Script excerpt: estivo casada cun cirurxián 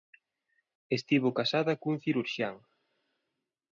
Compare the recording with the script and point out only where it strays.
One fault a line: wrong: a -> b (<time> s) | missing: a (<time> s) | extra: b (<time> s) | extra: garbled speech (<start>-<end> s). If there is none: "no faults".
no faults